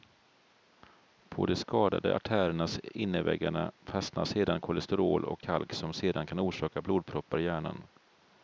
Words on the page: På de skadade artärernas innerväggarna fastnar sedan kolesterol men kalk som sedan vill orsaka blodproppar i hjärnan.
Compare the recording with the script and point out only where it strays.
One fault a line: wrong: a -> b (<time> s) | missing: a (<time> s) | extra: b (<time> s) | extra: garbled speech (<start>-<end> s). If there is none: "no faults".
wrong: men -> och (5.3 s)
wrong: vill -> kan (6.3 s)